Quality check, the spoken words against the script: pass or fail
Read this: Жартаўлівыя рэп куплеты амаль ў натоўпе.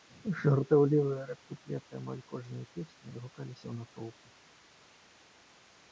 fail